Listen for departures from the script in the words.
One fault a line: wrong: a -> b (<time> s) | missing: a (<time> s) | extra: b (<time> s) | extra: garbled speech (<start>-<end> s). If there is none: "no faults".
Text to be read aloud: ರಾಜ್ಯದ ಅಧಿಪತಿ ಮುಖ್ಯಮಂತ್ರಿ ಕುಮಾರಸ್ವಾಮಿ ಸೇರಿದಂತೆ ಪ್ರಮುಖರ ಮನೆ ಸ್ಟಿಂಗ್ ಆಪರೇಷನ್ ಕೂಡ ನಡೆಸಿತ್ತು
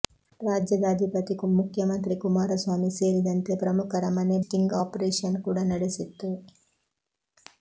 no faults